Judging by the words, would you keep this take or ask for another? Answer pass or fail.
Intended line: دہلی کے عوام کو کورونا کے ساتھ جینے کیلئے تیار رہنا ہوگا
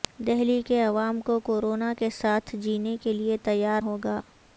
fail